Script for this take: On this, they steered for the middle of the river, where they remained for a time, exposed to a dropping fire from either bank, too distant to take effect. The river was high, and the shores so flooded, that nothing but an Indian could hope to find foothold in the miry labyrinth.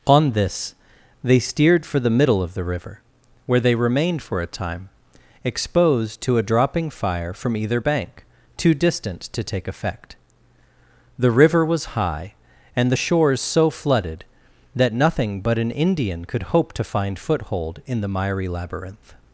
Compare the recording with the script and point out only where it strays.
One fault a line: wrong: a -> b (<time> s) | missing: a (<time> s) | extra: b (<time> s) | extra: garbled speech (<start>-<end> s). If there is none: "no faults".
no faults